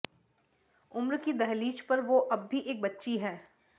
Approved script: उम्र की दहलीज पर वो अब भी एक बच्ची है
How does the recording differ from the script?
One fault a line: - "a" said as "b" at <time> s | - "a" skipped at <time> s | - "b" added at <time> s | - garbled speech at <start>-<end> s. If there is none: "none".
none